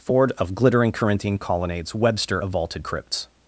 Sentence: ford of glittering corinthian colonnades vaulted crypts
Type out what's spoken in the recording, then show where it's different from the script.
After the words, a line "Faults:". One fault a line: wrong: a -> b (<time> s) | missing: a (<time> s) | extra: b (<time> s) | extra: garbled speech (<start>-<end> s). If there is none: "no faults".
ford of glittering corinthian colonnades webster of vaulted crypts
Faults:
extra: webster of (1.9 s)